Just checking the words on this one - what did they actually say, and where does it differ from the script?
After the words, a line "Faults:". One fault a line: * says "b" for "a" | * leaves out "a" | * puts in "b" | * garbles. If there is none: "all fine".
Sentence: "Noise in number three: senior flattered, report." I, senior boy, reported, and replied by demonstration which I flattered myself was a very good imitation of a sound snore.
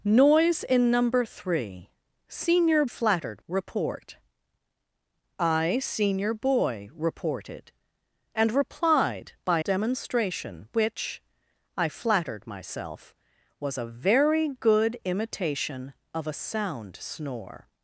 "Noise in number three: senior flattered, report." I, senior boy, reported, and replied by demonstration which I flattered myself was a very good imitation of a sound snore.
Faults:
all fine